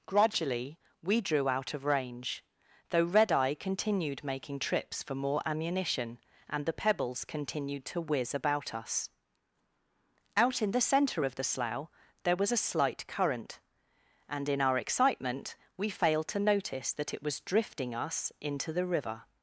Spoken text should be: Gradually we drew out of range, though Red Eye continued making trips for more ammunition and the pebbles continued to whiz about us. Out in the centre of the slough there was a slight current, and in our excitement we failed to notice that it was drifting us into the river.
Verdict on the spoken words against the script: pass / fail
pass